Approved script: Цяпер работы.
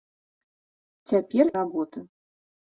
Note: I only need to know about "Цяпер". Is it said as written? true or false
true